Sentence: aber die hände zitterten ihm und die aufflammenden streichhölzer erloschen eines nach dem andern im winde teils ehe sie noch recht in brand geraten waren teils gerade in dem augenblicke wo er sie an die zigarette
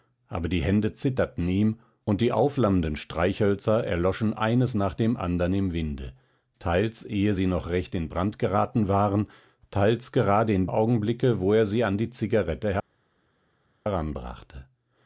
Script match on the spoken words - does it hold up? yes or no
no